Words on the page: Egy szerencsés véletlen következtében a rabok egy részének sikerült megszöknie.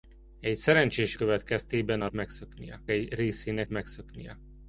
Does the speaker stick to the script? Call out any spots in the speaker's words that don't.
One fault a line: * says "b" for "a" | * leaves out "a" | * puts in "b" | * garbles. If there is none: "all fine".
* leaves out "véletlen"
* says "megszöknie" for "rabok"
* leaves out "sikerült"